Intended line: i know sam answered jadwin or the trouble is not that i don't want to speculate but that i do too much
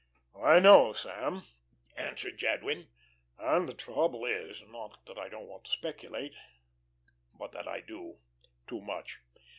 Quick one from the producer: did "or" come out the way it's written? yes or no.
no